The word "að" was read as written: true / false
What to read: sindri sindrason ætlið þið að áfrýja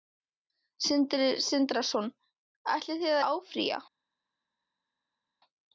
false